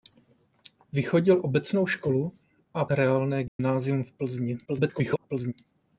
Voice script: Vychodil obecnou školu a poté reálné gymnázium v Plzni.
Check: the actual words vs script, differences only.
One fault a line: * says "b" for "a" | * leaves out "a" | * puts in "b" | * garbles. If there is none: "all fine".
* leaves out "poté"
* garbles